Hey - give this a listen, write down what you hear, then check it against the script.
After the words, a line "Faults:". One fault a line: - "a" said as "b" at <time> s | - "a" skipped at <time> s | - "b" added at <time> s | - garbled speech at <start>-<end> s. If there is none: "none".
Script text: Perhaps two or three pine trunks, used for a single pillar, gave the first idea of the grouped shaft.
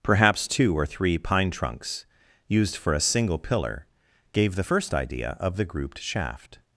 Perhaps two or three pine trunks, used for a single pillar, gave the first idea of the grouped shaft.
Faults:
none